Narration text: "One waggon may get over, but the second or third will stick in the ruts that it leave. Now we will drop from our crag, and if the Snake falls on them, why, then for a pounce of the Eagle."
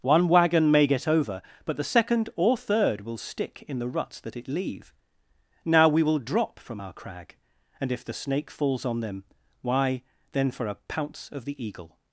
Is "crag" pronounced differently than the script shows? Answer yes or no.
no